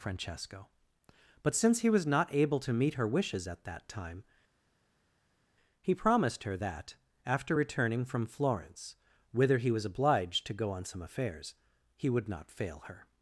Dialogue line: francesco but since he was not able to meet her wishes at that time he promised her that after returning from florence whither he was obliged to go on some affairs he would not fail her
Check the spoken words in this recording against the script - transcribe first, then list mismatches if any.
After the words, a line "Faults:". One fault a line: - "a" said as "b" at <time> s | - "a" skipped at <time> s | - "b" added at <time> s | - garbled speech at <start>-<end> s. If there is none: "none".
francesco but since he was not able to meet her wishes at that time he promised her that after returning from florence whither he was obliged to go on some affairs he would not fail her
Faults:
none